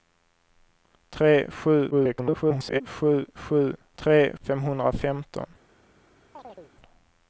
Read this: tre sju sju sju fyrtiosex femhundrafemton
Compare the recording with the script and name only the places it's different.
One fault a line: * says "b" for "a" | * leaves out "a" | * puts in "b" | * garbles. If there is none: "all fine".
* garbles
* says "tre" for "fyrtiosex"